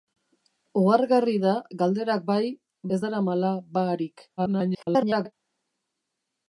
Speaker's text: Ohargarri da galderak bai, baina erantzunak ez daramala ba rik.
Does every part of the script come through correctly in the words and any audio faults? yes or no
no